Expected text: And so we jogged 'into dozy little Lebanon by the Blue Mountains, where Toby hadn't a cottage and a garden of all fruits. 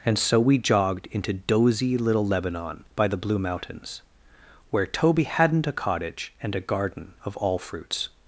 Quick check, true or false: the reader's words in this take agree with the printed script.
true